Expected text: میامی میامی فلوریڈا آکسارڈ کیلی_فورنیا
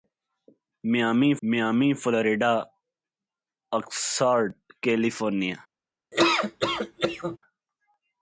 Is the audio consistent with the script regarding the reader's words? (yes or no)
yes